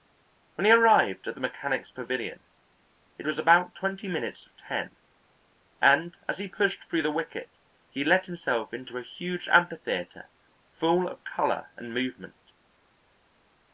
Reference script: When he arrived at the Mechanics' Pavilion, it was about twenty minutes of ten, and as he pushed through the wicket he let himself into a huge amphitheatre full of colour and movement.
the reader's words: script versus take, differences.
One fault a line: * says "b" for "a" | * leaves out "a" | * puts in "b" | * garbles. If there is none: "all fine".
all fine